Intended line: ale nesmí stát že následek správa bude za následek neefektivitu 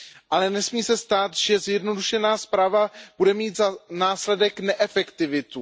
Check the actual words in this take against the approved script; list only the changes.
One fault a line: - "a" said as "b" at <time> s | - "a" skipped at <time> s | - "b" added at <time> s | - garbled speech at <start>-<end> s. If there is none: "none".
- "se" added at 0.8 s
- "následek" said as "zjednodušená" at 1.6 s
- "mít" added at 3.3 s